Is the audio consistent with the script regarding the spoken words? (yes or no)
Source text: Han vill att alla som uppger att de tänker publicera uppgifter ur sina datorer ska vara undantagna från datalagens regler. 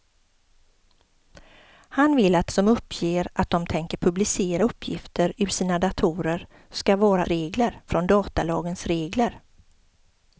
no